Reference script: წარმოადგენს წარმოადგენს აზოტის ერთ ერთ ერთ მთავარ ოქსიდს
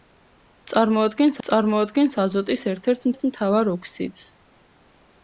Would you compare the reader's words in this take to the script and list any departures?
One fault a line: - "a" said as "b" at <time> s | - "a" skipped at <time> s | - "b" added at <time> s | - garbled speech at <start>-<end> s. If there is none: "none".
none